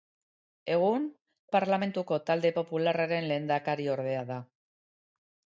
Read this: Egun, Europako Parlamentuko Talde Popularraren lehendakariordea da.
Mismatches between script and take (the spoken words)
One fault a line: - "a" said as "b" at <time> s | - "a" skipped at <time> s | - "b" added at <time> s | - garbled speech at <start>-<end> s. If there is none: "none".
- "Europako" skipped at 1.0 s